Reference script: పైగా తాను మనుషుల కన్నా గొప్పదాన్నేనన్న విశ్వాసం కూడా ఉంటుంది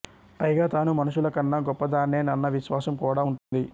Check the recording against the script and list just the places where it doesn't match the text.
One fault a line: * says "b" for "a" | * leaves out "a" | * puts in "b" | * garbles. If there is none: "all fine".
all fine